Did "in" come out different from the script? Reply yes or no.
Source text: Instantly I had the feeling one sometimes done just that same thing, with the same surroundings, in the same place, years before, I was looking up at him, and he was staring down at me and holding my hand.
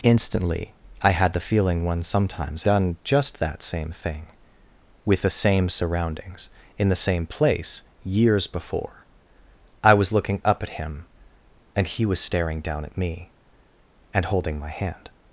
no